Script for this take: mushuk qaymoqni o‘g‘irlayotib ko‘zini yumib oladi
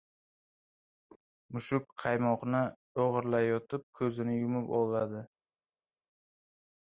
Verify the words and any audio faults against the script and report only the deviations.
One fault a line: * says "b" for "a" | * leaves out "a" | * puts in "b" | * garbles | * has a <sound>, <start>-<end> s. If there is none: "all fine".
all fine